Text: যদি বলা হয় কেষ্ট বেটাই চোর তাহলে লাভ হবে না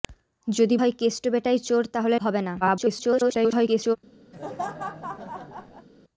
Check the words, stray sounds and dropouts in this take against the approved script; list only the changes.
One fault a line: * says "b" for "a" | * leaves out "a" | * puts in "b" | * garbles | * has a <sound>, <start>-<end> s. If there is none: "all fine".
* leaves out "বলা"
* leaves out "লাভ"
* garbles
* has a laugh, 4.3-5.9 s